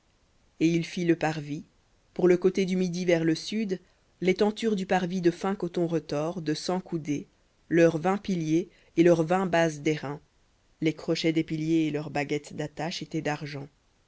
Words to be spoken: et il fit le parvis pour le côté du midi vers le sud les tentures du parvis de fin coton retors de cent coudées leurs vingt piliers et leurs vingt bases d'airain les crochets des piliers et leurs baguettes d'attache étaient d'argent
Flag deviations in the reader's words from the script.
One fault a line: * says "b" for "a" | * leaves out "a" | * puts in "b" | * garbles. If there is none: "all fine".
all fine